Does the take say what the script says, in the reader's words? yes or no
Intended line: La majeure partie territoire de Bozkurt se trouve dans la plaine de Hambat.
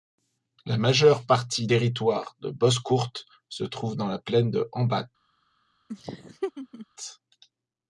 yes